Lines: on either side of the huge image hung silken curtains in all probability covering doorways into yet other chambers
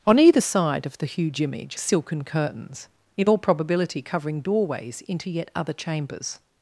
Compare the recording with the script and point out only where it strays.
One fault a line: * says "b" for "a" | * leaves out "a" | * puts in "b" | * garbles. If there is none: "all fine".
* leaves out "hung"